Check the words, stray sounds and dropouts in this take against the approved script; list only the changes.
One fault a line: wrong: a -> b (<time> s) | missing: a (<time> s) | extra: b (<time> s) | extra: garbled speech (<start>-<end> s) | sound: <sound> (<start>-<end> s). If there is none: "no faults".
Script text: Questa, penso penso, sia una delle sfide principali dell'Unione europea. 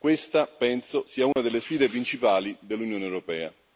missing: penso (1.1 s)
sound: dropout (1.3-1.4 s)